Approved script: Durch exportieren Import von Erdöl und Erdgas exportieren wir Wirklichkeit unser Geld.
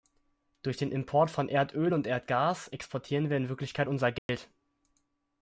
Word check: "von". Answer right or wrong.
right